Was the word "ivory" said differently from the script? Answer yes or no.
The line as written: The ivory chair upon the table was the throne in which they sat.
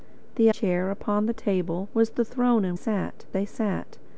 yes